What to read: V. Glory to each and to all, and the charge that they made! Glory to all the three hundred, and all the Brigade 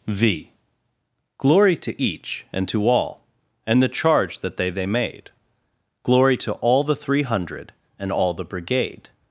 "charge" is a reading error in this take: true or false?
false